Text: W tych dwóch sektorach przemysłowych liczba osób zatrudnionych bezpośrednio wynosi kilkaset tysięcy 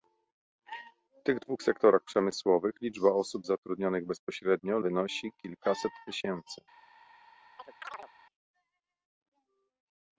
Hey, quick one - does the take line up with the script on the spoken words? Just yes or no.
yes